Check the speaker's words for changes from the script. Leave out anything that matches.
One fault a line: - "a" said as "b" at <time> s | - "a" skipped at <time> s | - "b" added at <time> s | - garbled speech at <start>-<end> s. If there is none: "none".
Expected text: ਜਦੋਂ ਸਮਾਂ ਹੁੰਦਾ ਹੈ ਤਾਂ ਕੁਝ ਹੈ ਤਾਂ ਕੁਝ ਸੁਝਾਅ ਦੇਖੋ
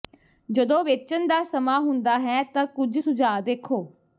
- "ਵੇਚਣ ਦਾ" added at 0.8 s
- "ਹੈ ਤਾਂ ਕੁਝ" skipped at 3.0 s